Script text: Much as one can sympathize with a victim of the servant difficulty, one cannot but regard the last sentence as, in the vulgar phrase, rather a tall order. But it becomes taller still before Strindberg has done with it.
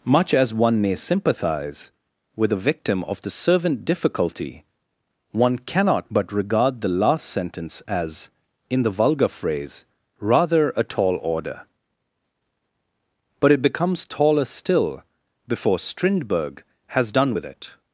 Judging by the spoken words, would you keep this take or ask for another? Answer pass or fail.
fail